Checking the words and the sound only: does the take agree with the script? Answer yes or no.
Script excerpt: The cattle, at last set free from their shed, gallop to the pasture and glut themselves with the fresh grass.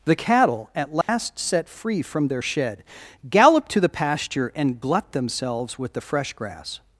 no